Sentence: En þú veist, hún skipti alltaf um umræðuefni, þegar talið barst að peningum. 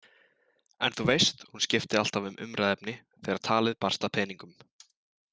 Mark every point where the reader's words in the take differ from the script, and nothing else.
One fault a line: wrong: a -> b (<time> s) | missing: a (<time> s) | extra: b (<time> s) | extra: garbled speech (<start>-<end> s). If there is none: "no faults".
no faults